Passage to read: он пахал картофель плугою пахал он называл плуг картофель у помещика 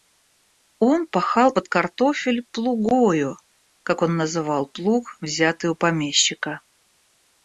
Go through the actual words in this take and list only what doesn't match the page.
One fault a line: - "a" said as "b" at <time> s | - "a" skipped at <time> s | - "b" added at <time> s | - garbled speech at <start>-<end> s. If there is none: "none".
- "под" added at 1.5 s
- "пахал" said as "как" at 3.8 s
- "картофель" said as "взятый" at 5.2 s